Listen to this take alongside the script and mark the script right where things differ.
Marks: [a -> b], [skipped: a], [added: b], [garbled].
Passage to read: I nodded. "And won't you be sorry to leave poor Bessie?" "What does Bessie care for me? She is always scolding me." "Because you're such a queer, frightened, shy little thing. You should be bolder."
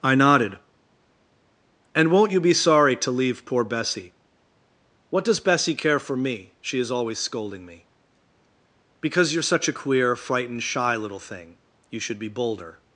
I nodded. "And won't you be sorry to leave poor Bessie?" "What does Bessie care for me? She is always scolding me." "Because you're such a queer, frightened, shy little thing. You should be bolder."